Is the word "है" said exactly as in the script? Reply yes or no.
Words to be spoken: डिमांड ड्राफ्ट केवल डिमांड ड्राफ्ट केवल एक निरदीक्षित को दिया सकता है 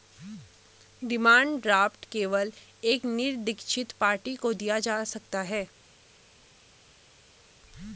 yes